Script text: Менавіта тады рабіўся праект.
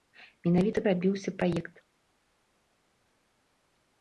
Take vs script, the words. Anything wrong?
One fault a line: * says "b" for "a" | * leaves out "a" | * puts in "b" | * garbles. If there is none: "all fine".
* leaves out "тады"